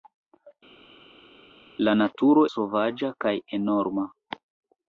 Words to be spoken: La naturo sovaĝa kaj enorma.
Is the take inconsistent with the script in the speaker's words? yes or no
no